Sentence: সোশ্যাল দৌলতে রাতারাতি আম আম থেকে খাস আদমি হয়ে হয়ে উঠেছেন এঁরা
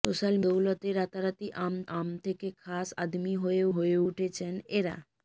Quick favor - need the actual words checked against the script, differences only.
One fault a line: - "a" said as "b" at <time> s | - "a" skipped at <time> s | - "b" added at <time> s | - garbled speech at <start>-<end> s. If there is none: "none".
none